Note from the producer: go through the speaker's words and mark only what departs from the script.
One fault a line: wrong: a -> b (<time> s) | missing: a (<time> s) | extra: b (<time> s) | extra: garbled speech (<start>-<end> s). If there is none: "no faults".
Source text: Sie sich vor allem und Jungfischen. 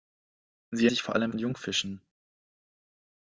no faults